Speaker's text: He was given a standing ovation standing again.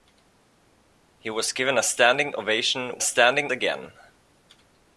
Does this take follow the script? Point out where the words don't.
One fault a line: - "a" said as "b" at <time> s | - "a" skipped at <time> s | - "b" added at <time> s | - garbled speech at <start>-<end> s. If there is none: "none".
none